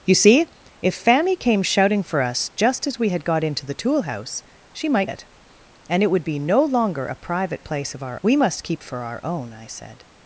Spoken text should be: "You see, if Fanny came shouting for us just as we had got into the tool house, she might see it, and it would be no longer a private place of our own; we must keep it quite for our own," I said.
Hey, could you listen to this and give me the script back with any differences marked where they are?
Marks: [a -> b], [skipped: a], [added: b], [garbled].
"You see, if Fanny came shouting for us just as we had got into the tool house, she might [skipped: see] it, and it would be no longer a private place of our [skipped: own;] we must keep [skipped: it quite] for our own," I said.